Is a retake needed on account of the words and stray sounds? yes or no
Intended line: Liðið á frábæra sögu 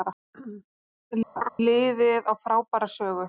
yes